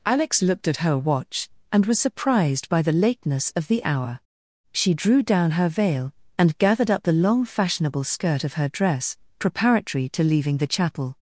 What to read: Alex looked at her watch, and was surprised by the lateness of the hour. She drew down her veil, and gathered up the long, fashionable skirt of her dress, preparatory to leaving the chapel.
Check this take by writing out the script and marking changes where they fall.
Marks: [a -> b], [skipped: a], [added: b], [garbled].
Alex looked at her watch, and was surprised by the lateness of the hour. She drew down her veil, and gathered up the long, fashionable skirt of her dress, preparatory to leaving the chapel.